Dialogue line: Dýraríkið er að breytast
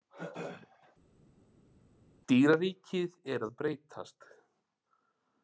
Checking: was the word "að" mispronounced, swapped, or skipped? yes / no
no